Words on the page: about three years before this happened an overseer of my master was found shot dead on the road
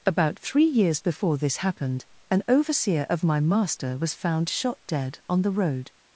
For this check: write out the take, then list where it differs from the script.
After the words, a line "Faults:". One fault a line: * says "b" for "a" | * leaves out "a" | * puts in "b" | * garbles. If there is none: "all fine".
about three years before this happened an overseer of my master was found shot dead on the road
Faults:
all fine